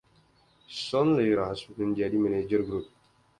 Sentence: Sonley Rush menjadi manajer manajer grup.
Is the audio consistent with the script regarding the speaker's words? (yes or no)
no